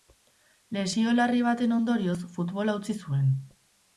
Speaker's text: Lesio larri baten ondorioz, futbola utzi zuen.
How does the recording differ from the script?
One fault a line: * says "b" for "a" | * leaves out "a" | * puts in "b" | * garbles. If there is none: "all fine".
all fine